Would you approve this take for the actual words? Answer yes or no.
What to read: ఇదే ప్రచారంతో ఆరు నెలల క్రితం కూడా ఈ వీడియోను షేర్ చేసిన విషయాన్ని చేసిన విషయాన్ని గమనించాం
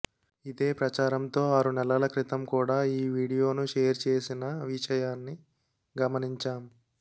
no